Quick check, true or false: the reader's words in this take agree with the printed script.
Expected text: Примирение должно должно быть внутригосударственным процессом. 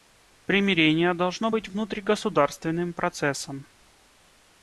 false